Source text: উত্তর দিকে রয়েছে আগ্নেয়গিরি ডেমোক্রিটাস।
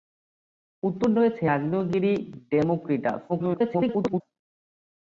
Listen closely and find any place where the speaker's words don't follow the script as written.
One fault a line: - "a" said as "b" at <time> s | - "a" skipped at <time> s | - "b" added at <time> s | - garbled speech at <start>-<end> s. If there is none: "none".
- "দিকে" skipped at 1.1 s
- garbled speech at 3.3-4.2 s